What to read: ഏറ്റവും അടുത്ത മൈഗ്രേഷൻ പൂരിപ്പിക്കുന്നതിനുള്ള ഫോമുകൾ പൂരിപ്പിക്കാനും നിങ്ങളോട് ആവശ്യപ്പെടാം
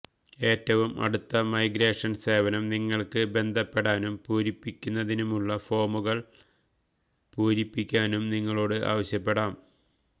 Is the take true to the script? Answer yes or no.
no